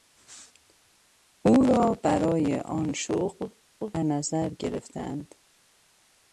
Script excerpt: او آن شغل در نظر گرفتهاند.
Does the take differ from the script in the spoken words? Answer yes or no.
yes